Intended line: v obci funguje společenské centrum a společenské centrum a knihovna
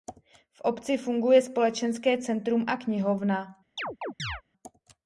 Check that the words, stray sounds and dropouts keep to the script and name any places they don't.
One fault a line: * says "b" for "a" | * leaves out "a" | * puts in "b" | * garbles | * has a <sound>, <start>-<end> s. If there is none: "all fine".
* leaves out "společenské centrum a"
* has a chirp, 3.8-4.4 s